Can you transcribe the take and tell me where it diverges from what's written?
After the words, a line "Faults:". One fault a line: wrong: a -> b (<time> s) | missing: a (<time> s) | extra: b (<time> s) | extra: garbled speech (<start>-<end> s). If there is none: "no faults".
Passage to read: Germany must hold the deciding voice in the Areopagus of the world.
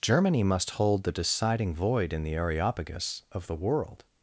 Germany must hold the deciding void in the Areopagus of the world.
Faults:
wrong: voice -> void (1.7 s)